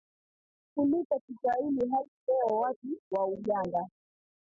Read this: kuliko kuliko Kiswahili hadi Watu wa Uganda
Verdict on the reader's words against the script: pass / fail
fail